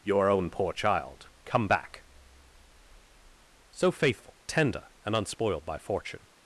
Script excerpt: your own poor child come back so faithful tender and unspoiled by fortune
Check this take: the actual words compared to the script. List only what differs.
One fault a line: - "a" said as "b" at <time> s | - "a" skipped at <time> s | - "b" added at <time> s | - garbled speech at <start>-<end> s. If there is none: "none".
none